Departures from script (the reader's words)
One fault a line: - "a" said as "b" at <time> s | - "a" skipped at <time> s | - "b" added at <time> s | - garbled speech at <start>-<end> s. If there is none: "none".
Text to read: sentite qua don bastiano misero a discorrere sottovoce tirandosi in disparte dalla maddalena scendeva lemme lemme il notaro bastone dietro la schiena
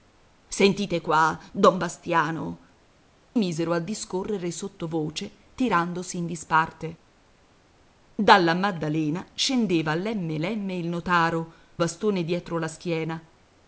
none